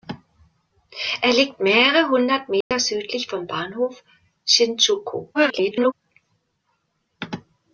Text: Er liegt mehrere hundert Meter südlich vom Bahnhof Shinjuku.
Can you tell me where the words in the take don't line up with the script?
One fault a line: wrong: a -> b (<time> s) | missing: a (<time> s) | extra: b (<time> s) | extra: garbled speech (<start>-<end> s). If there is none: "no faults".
extra: garbled speech (5.3-5.9 s)